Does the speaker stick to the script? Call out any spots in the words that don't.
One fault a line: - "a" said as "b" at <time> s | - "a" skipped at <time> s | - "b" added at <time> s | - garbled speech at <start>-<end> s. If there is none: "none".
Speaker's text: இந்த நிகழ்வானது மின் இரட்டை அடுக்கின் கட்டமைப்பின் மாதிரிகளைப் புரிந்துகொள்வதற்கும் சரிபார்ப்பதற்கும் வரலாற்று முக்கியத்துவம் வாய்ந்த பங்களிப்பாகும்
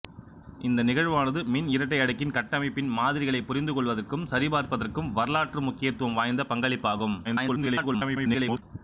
- garbled speech at 7.2-8.6 s